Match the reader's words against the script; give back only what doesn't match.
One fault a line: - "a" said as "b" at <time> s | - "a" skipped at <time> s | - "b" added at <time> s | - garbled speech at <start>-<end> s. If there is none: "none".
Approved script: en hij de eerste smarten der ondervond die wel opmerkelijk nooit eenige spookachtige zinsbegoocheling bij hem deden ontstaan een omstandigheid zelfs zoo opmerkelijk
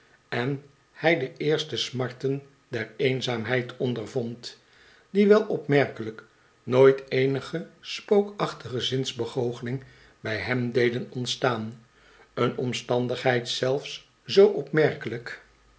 - "eenzaamheid" added at 3.0 s